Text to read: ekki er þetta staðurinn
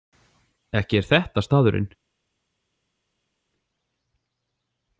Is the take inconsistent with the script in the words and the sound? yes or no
no